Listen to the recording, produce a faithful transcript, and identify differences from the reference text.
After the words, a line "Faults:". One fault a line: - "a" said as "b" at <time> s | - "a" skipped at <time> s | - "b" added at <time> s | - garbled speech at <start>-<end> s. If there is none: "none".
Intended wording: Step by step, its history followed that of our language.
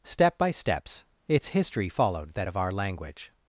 Step by steps, its history followed that of our language.
Faults:
- "step" said as "steps" at 0.5 s